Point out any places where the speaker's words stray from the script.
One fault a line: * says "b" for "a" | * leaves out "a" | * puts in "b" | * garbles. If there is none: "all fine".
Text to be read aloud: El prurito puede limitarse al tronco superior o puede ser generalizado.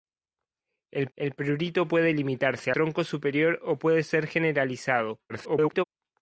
* puts in "el"
* leaves out "al"
* garbles